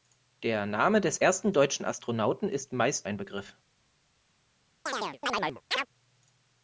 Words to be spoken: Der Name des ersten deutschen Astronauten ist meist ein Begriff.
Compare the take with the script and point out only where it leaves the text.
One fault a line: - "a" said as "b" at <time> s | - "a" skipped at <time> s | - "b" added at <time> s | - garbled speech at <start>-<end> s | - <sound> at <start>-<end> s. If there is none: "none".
- chirp at 4.9-5.9 s